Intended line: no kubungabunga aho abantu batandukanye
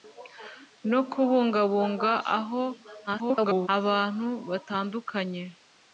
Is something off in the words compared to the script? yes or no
yes